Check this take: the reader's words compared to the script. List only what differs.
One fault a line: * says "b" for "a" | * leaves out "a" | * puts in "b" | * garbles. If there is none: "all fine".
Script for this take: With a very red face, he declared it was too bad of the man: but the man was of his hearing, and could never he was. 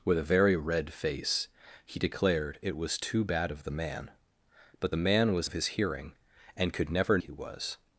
all fine